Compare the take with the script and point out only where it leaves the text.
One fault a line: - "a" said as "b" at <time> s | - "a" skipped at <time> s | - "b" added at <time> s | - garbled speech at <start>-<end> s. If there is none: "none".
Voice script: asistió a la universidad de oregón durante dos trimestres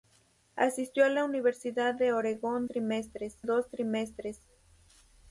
- "durante" said as "trimestres" at 2.7 s